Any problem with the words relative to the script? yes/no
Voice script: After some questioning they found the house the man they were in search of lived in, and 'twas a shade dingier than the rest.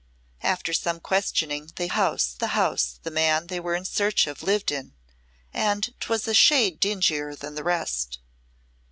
yes